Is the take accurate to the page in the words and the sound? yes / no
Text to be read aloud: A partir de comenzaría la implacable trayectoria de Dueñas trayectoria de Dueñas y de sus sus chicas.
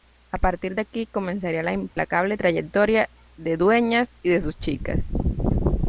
no